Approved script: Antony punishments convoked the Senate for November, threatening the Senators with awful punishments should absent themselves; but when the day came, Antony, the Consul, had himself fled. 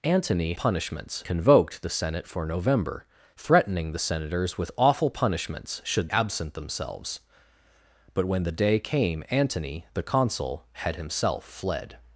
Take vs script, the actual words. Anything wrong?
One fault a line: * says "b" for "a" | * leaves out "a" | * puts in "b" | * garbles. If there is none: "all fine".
all fine